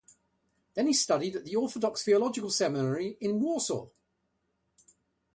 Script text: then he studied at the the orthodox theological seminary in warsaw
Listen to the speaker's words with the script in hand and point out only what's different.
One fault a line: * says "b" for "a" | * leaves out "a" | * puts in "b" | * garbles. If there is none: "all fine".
* leaves out "the"